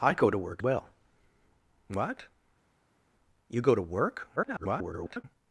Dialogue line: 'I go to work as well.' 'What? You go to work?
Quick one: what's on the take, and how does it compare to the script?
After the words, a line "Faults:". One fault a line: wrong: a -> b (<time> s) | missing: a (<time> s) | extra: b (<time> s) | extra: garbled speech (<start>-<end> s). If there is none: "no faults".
'I go to work well.' 'What? You go to work? [garbled]
Faults:
missing: as (0.6 s)
extra: garbled speech (4.4-5.2 s)